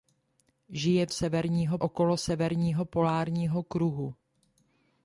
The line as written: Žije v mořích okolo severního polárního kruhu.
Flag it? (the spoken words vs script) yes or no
yes